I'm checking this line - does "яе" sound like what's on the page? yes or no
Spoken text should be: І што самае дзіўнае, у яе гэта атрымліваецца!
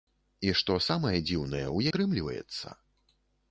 no